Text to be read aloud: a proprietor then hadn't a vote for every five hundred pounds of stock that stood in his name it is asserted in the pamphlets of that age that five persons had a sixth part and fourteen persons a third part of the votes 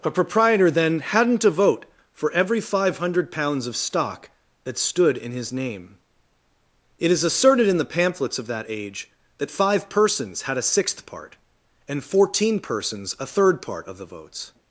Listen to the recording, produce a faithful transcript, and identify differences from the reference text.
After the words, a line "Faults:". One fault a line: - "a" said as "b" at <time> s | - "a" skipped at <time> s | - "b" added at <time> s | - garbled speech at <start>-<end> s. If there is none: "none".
a proprietor then hadn't a vote for every five hundred pounds of stock that stood in his name it is asserted in the pamphlets of that age that five persons had a sixth part and fourteen persons a third part of the votes
Faults:
none